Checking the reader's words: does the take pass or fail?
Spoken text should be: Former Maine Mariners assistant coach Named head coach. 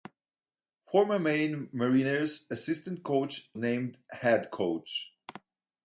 pass